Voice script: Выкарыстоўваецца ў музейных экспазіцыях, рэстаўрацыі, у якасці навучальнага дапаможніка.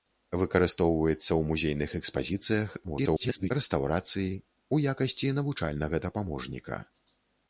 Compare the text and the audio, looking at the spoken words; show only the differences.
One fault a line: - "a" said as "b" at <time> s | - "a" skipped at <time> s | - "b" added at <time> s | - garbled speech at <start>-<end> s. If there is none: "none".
- garbled speech at 2.8-3.5 s